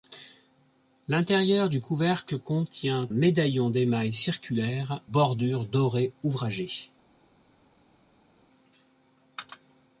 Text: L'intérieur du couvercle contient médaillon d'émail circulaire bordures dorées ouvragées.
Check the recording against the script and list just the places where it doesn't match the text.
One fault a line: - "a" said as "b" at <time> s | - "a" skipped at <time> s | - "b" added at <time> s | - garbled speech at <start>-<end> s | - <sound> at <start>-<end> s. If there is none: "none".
none